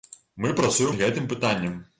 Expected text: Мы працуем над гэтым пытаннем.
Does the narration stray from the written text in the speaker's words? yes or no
yes